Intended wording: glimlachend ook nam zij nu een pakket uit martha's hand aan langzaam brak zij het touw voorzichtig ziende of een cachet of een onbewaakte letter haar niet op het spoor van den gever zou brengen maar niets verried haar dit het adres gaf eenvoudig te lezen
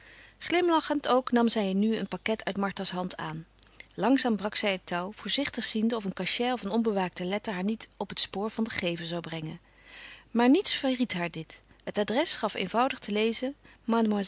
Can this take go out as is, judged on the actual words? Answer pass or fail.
pass